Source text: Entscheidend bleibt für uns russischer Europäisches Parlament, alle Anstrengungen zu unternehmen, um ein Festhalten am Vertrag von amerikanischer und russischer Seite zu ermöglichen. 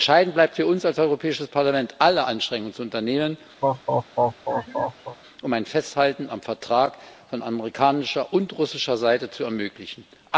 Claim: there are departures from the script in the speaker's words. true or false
true